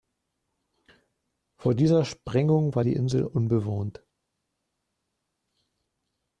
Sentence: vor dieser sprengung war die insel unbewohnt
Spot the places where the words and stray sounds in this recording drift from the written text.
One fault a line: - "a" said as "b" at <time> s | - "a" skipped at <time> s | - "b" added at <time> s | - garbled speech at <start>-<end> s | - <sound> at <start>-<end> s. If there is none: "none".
none